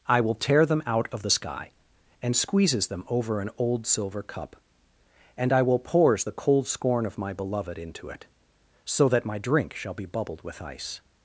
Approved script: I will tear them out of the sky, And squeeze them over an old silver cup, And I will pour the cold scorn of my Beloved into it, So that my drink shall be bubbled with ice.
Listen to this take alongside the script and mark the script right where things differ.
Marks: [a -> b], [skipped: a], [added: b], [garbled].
I will tear them out of the sky, And [squeeze -> squeezes] them over an old silver cup, And I will [pour -> pours] the cold scorn of my Beloved into it, So that my drink shall be bubbled with ice.